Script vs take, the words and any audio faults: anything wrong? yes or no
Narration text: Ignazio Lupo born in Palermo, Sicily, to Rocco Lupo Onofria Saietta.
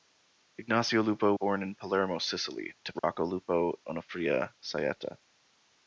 yes